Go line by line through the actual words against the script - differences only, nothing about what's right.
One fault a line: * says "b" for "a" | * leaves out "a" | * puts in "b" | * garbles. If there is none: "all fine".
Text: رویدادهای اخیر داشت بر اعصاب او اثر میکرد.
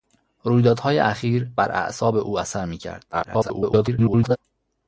* leaves out "داشت"
* garbles